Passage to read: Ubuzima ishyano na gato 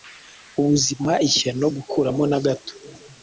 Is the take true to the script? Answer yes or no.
no